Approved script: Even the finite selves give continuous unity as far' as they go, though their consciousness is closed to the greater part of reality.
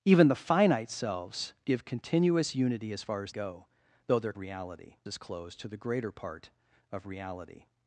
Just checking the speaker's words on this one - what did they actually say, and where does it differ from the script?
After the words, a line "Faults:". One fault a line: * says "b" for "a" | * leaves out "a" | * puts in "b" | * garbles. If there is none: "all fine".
Even the finite selves give continuous unity as far' as go, though their reality is closed to the greater part of reality.
Faults:
* leaves out "they"
* says "reality" for "consciousness"